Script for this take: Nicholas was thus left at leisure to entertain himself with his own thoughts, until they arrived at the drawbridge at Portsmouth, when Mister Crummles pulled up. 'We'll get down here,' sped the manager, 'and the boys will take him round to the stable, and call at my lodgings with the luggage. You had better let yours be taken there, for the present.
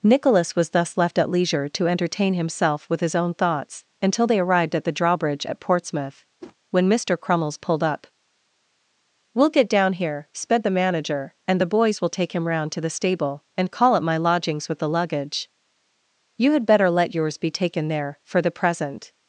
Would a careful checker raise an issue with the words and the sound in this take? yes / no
yes